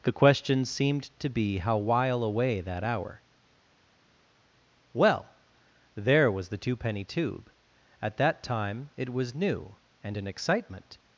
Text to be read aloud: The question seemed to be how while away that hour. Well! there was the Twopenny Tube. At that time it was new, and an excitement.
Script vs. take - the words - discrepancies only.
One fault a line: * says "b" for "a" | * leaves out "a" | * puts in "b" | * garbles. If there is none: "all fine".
all fine